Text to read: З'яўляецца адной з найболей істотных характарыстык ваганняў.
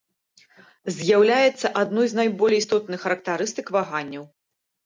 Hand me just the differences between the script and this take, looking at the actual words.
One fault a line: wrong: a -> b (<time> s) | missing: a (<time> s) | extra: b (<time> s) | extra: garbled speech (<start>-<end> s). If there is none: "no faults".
no faults